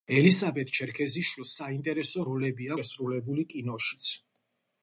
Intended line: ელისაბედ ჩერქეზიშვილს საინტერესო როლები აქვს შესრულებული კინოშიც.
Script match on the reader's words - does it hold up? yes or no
no